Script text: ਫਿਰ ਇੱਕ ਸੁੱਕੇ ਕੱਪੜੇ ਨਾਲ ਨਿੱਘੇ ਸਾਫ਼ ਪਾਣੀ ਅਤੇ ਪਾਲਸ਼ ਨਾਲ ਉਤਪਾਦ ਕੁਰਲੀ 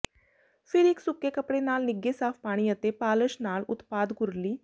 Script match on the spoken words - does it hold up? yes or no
yes